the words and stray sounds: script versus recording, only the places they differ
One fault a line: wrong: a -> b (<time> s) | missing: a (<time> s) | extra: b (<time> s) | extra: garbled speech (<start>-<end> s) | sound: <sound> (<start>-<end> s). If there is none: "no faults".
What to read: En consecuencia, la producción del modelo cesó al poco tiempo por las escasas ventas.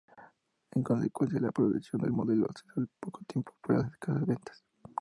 no faults